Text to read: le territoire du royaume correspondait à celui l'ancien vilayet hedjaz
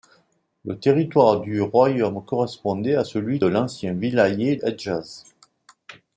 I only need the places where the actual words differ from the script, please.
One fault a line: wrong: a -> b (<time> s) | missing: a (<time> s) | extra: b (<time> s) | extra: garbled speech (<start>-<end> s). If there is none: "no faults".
no faults